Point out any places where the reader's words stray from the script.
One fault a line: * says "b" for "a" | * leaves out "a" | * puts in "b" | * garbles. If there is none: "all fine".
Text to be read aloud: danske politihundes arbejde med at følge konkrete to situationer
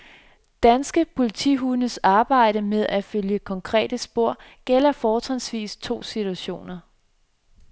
* puts in "spor gælder fortrinsvis"